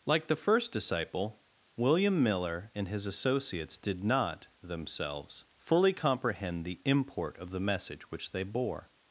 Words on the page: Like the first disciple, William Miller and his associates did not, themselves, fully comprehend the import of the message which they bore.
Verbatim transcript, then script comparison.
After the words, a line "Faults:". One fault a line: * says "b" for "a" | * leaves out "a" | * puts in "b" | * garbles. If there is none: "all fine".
Like the first disciple, William Miller and his associates did not, themselves, fully comprehend the import of the message which they bore.
Faults:
all fine